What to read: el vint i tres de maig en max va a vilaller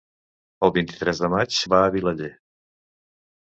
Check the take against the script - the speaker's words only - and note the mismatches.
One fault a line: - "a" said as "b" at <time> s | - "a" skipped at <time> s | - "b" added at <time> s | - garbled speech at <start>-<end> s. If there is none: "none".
- "en max" skipped at 1.6 s